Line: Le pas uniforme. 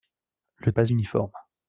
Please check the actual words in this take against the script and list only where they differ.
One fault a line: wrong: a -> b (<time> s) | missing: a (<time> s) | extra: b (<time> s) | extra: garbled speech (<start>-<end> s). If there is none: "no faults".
no faults